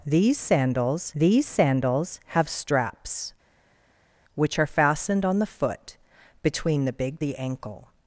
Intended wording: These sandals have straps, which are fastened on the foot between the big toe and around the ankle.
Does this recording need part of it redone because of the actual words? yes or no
yes